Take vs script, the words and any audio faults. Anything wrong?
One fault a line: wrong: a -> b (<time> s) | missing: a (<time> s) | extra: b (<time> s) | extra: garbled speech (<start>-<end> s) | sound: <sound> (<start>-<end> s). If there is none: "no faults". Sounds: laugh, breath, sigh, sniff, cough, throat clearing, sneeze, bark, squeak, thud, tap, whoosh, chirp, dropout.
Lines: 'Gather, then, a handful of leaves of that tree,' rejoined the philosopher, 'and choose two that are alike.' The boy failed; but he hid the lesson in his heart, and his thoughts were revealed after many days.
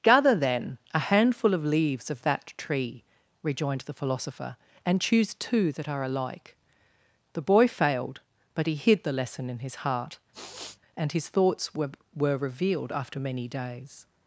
sound: sniff (10.3-10.8 s)
extra: were (12.2 s)